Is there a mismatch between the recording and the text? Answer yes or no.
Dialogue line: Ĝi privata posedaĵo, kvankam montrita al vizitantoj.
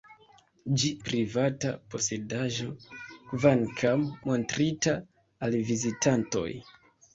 no